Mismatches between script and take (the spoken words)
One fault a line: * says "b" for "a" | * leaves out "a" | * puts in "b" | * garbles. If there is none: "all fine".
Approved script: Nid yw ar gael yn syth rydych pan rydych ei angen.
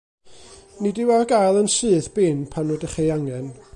* says "bin" for "rydych"